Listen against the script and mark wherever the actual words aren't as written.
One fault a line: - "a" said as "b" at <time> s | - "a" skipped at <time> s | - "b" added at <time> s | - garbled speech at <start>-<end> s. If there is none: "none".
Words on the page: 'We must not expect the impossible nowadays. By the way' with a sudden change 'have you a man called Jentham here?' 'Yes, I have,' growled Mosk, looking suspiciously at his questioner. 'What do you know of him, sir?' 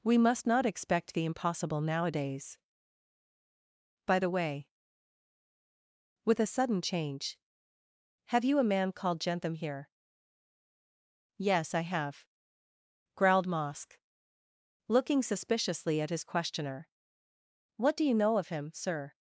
none